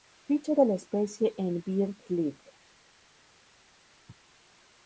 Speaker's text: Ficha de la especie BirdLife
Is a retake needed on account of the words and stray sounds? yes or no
yes